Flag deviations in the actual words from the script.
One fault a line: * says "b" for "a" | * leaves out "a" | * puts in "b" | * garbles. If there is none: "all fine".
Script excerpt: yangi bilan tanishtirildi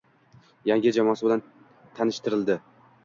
* puts in "jamoasi"